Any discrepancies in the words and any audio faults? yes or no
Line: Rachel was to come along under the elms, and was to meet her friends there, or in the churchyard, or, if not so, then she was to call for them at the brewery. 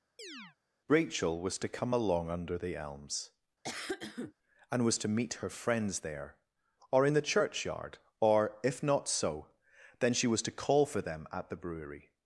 yes